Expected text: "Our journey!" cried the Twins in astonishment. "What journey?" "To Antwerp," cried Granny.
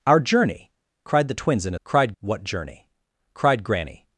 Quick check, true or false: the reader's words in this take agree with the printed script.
false